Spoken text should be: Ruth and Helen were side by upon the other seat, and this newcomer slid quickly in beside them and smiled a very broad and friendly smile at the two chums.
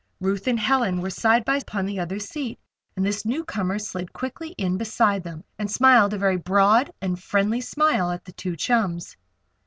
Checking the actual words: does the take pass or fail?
pass